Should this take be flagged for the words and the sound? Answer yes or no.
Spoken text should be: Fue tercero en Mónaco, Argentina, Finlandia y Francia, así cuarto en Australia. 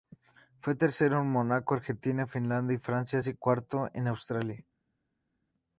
no